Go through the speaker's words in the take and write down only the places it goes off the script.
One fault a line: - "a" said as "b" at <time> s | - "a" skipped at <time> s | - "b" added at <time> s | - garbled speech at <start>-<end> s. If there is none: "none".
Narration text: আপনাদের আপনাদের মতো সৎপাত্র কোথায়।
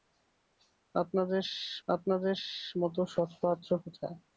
none